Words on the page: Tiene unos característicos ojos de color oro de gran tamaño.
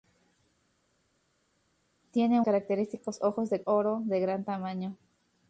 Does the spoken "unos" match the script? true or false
false